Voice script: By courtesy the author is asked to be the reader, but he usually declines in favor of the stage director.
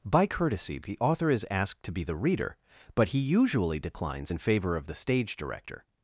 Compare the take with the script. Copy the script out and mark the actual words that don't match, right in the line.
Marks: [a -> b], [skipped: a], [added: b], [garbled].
By courtesy the author is asked to be the reader, but he usually declines in favor of the stage director.